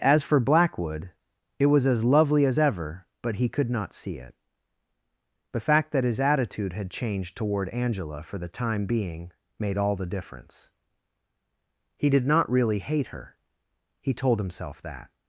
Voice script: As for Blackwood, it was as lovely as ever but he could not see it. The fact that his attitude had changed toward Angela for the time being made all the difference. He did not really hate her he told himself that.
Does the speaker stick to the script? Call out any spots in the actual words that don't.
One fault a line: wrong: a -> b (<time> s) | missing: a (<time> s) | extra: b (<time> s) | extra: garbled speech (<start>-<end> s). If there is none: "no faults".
no faults